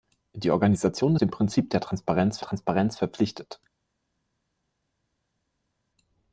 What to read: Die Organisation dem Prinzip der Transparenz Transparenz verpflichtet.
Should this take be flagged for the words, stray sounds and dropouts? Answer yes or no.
no